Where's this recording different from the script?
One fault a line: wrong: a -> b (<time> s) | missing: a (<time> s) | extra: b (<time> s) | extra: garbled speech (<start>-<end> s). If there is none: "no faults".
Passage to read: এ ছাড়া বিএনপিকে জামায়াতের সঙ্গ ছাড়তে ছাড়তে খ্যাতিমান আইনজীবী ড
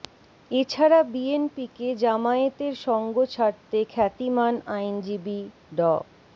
missing: ছাড়তে (3.8 s)